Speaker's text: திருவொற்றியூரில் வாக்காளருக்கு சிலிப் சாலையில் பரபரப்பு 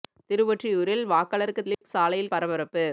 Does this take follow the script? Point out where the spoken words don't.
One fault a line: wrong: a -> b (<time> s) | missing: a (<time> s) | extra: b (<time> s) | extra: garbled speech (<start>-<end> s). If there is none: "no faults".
no faults